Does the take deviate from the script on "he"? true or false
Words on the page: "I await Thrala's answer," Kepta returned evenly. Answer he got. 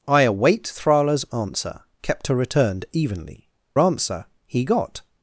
false